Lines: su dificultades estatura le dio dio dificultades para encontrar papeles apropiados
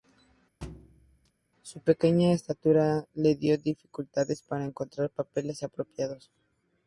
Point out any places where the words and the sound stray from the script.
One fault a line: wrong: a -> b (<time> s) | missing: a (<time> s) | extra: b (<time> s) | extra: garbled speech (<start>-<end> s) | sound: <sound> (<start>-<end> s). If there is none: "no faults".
sound: thud (0.6-1.3 s)
wrong: dificultades -> pequeña (1.8 s)
missing: dio (3.6 s)